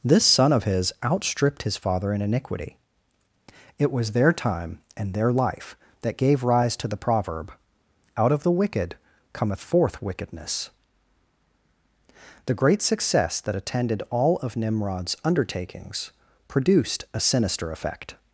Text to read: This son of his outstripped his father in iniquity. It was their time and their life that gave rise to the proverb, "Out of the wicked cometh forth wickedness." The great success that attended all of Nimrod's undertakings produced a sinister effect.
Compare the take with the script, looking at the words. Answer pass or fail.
pass